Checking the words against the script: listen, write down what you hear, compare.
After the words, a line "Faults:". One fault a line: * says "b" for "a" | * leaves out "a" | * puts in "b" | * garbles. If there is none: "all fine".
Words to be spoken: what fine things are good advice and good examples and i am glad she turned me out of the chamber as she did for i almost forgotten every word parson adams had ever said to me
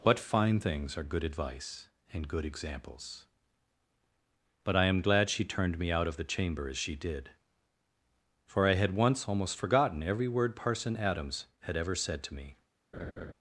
what fine things are good advice and good examples but i am glad she turned me out of the chamber as she did for i had once almost forgotten every word parson adams had ever said to me
Faults:
* says "but" for "and"
* puts in "had once"